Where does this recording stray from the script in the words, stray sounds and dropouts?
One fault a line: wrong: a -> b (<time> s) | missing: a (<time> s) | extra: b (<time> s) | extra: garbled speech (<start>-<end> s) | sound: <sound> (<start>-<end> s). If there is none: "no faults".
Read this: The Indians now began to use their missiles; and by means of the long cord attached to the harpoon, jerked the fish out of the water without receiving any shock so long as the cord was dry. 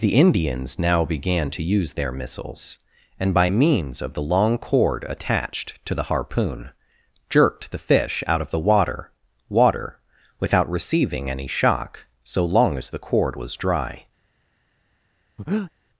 extra: water (9.5 s)
sound: breath (15.4-15.7 s)